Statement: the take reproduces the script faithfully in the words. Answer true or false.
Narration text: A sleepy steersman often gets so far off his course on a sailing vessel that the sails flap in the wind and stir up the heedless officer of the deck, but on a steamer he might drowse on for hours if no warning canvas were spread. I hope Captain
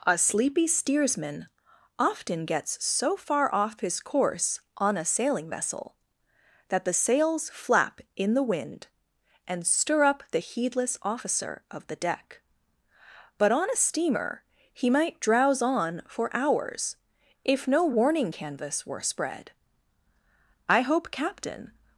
true